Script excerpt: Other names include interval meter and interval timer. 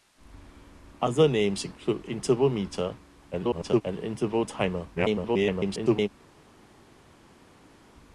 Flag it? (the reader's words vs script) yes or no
yes